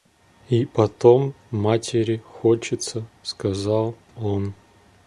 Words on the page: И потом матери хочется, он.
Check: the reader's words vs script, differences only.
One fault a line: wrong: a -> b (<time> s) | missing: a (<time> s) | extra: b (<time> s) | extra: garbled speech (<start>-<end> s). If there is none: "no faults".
extra: сказал (3.2 s)